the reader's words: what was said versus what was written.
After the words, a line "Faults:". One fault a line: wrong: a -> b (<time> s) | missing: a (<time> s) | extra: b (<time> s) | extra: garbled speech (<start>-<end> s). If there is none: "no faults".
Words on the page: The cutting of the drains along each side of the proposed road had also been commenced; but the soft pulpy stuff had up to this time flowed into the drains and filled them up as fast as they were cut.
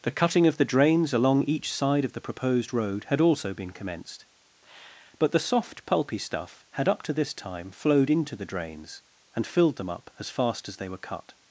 The cutting of the drains along each side of the proposed road had also been commenced; but the soft pulpy stuff had up to this time flowed into the drains and filled them up as fast as they were cut.
Faults:
no faults